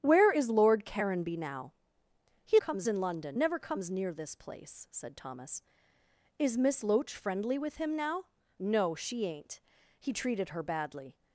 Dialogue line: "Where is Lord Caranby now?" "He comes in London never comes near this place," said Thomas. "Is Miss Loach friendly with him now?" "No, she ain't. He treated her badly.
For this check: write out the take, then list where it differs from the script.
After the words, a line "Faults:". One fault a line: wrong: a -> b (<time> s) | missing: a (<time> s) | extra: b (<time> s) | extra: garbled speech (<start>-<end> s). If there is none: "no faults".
"Where is Lord Caranby now?" "He comes in London never comes near this place," said Thomas. "Is Miss Loach friendly with him now?" "No, she ain't. He treated her badly.
Faults:
no faults